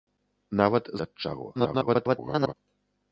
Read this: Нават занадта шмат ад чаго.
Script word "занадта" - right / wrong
wrong